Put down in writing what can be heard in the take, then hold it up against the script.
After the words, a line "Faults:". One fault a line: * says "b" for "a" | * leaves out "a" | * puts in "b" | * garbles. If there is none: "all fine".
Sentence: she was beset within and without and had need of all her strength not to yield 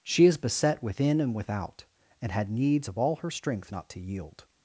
she is beset within and without and had needs of all her strength not to yield
Faults:
* says "is" for "was"
* says "needs" for "need"